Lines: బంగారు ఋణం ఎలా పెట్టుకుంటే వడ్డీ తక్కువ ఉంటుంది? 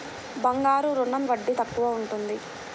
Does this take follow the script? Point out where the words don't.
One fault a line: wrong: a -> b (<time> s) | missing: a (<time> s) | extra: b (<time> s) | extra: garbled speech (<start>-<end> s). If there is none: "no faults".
missing: ఎలా పెట్టుకుంటే (1.3 s)